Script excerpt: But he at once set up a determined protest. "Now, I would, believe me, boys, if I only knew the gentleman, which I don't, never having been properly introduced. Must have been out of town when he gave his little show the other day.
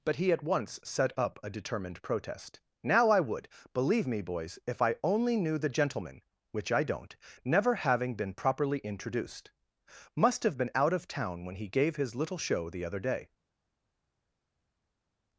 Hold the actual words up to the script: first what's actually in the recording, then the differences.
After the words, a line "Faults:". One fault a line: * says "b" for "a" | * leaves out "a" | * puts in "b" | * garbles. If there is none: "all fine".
But he at once set up a determined protest. "Now, I would, believe me, boys, if I only knew the gentleman, which I don't, never having been properly introduced. Must have been out of town when he gave his little show the other day.
Faults:
all fine